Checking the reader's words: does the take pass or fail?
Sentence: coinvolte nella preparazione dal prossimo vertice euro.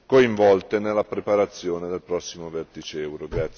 fail